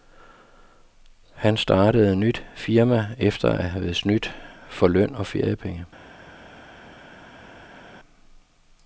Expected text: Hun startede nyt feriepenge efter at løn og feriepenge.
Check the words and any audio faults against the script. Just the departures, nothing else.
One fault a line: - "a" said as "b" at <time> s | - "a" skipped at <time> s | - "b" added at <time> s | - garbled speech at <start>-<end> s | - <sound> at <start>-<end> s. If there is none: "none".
- "Hun" said as "Han" at 1.3 s
- "feriepenge" said as "firma" at 2.5 s
- "have snydt for" added at 3.7 s